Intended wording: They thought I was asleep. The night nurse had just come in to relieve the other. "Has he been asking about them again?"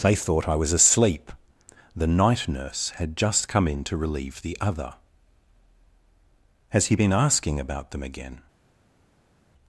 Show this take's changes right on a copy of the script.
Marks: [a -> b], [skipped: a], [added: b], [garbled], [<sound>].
They thought I was asleep. The night nurse had just come in to relieve the other. "Has he been asking about them again?"